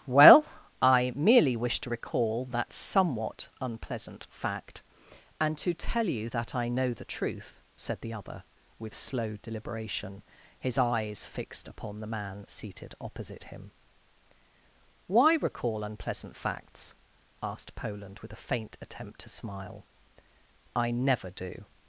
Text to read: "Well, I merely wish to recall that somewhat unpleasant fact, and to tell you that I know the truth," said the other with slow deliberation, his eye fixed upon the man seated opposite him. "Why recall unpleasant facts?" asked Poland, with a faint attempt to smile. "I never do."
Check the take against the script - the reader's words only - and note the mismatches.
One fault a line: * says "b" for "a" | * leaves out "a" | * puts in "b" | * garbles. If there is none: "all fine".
* says "eyes" for "eye"